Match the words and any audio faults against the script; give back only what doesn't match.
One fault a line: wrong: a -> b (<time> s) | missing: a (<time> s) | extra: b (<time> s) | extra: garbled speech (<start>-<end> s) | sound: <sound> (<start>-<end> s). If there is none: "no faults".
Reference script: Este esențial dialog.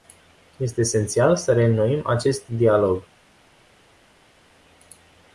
extra: să reînnoim acest (1.4 s)